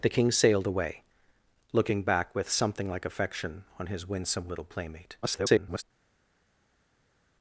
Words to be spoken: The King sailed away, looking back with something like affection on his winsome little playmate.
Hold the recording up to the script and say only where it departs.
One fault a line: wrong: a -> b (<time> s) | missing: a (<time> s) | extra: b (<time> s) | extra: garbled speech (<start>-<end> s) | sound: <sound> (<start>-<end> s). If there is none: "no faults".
extra: garbled speech (5.2-5.8 s)